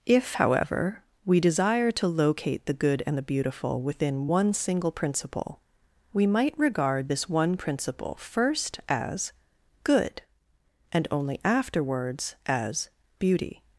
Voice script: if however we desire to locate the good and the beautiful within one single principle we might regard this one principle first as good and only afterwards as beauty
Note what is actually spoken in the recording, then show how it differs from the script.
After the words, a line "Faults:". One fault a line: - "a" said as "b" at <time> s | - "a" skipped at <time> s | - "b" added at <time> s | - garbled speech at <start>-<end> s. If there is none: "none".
if however we desire to locate the good and the beautiful within one single principle we might regard this one principle first as good and only afterwards as beauty
Faults:
none